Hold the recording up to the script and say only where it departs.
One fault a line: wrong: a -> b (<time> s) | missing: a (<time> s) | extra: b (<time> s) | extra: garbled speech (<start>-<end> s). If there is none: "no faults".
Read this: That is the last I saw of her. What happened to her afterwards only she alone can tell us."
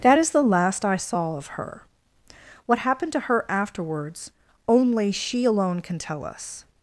no faults